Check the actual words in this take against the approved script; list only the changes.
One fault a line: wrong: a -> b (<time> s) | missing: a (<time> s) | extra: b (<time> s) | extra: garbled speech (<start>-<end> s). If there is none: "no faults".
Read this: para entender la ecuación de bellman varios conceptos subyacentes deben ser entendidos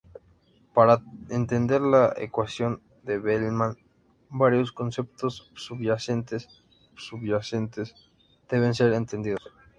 extra: subyacentes (6.9 s)